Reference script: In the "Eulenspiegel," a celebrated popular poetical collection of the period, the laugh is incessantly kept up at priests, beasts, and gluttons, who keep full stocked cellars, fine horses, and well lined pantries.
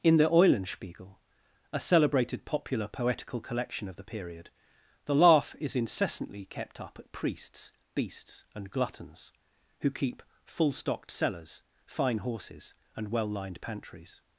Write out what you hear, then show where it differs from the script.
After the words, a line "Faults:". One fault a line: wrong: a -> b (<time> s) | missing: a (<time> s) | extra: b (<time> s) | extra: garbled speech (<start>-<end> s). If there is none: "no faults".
In the "Eulenspiegel," a celebrated popular poetical collection of the period, the laugh is incessantly kept up at priests, beasts, and gluttons, who keep full stocked cellars, fine horses, and well lined pantries.
Faults:
no faults